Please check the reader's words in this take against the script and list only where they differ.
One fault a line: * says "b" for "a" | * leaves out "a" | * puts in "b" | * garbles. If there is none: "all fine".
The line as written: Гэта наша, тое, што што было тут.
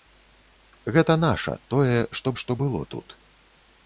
all fine